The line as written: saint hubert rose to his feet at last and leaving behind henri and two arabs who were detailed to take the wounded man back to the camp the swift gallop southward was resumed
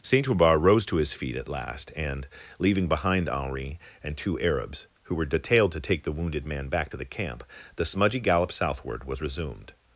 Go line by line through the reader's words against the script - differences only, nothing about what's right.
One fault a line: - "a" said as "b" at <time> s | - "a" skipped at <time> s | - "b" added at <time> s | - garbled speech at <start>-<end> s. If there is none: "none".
- "swift" said as "smudgy" at 7.8 s